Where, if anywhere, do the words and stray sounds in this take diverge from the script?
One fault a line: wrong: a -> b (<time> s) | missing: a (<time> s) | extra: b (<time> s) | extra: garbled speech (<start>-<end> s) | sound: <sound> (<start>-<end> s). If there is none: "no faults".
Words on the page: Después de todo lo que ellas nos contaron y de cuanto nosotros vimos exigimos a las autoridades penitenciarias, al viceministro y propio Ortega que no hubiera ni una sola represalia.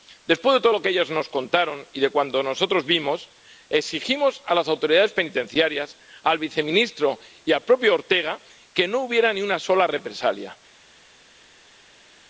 extra: al (7.5 s)